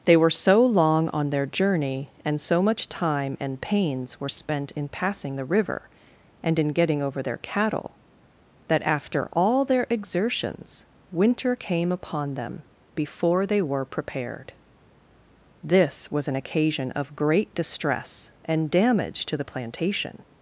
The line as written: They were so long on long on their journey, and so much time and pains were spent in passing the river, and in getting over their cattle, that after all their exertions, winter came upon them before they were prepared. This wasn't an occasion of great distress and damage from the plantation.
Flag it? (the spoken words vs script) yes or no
yes